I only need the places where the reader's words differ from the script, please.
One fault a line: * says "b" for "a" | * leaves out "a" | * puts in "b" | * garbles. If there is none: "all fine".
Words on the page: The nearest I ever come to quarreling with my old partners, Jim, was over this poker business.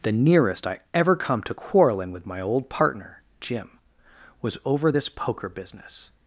* says "partner" for "partners"